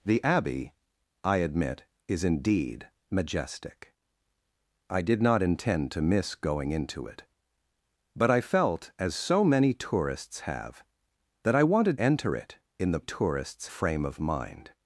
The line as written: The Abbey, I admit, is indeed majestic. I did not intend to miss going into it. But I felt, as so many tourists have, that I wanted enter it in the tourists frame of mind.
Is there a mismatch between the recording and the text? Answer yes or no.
no